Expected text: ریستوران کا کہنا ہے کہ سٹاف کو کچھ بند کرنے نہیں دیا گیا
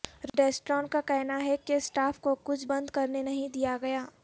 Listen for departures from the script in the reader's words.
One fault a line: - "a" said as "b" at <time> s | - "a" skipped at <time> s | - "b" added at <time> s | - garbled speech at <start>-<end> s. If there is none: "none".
none